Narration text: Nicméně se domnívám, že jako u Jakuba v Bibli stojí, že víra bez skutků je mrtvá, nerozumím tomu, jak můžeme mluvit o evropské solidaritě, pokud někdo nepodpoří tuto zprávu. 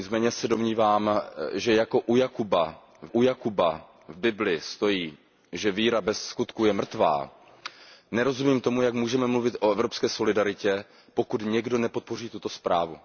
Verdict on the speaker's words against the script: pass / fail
fail